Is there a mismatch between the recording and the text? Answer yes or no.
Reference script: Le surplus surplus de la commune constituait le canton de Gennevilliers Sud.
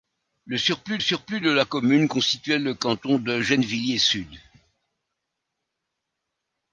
no